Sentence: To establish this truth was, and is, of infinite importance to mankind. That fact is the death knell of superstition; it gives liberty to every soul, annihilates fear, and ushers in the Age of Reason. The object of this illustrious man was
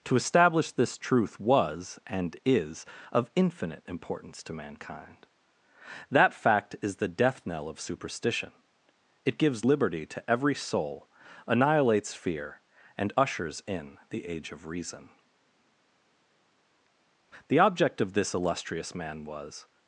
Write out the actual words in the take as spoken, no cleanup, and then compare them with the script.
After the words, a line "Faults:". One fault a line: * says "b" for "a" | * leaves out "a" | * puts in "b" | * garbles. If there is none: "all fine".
To establish this truth was, and is, of infinite importance to mankind. That fact is the death knell of superstition; it gives liberty to every soul, annihilates fear, and ushers in the Age of Reason. The object of this illustrious man was
Faults:
all fine